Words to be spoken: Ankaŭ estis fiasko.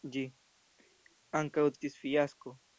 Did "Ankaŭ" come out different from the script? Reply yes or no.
no